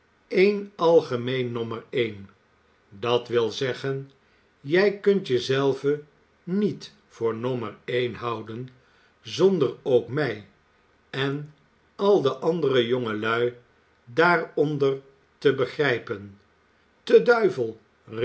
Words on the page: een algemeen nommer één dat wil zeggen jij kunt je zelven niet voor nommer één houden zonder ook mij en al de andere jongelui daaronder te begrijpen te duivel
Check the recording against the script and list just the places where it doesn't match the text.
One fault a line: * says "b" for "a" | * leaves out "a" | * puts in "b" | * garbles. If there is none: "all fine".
all fine